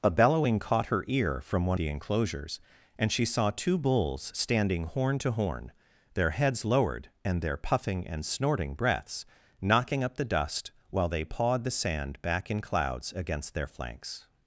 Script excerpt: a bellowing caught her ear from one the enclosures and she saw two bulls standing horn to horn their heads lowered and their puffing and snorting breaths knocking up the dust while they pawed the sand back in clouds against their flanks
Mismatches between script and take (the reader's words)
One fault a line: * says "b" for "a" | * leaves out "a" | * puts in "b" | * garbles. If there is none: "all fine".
all fine